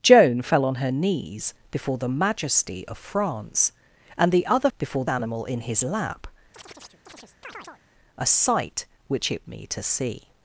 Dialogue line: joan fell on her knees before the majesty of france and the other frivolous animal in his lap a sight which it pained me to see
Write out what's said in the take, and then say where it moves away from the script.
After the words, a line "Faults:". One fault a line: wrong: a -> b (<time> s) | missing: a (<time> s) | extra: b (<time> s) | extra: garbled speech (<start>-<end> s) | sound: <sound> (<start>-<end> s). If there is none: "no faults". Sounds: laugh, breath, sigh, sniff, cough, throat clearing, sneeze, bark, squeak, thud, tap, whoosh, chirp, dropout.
joan fell on her knees before the majesty of france and the other before animal in his lap a sight which it me to see
Faults:
wrong: frivolous -> before (4.8 s)
sound: chirp (6.5-7.8 s)
missing: pained (9.4 s)